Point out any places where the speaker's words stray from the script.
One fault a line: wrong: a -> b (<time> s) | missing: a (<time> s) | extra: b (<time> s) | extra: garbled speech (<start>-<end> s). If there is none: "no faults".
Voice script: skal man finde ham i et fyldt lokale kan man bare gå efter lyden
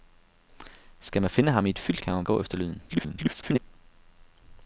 missing: lokale (2.0 s)
missing: bare (2.3 s)
extra: garbled speech (2.9-3.6 s)